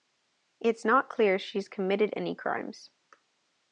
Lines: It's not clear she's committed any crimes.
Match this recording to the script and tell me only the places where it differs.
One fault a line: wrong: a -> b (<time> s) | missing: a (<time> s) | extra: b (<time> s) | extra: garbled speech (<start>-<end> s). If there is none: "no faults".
no faults